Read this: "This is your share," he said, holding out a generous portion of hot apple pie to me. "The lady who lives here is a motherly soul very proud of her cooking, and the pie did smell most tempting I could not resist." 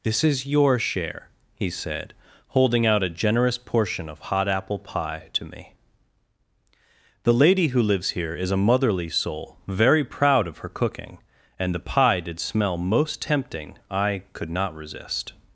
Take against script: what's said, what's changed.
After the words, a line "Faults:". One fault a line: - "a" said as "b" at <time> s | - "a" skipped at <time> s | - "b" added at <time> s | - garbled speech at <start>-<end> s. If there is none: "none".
"This is your share," he said, holding out a generous portion of hot apple pie to me. "The lady who lives here is a motherly soul very proud of her cooking, and the pie did smell most tempting I could not resist."
Faults:
none